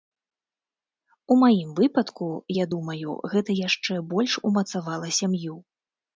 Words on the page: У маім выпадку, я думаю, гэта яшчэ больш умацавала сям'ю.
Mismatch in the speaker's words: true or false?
false